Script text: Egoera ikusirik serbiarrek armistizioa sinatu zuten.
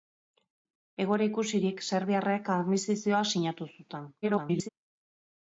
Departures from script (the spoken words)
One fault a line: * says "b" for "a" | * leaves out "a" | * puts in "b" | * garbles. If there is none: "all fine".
* garbles